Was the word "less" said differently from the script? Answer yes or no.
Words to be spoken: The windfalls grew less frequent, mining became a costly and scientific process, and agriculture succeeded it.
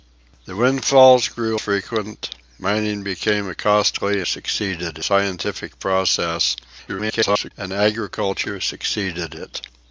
yes